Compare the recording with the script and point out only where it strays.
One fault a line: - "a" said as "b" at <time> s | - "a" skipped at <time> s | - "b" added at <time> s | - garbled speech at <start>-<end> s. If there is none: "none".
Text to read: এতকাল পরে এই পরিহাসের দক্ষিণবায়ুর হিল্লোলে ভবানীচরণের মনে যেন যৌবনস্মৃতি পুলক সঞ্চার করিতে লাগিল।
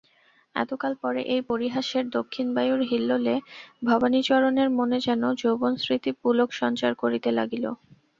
none